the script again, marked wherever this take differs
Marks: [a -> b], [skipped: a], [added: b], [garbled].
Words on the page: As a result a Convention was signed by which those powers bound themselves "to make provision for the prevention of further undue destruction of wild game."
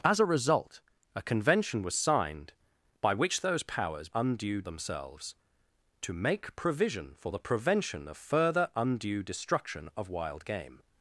As a result a Convention was signed by which those powers [bound -> undue] themselves "to make provision for the prevention of further undue destruction of wild game."